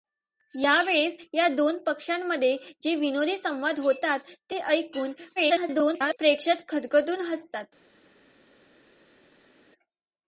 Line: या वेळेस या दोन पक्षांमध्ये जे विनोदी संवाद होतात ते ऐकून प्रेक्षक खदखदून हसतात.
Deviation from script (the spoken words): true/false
true